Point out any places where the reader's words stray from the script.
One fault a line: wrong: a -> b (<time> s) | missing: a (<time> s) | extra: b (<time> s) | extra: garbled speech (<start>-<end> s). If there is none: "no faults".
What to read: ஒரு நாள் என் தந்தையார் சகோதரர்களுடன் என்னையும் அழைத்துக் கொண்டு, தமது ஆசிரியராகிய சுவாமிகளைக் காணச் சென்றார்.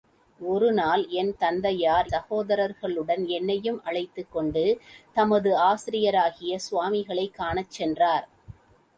no faults